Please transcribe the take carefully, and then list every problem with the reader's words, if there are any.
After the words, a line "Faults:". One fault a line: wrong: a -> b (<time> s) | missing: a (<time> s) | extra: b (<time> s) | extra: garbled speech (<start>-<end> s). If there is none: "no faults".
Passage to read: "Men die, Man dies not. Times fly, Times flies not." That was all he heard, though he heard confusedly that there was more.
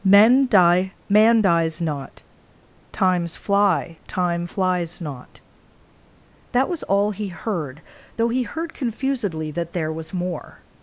"Men die, Man dies not. Times fly, Time flies not." That was all he heard, though he heard confusedly that there was more.
Faults:
wrong: Times -> Time (4.1 s)